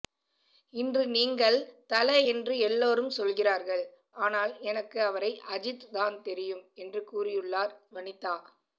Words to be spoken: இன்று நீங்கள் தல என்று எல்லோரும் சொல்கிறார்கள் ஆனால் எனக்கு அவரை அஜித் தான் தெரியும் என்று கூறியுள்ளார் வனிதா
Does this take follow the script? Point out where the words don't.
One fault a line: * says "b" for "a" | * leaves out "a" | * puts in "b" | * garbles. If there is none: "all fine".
all fine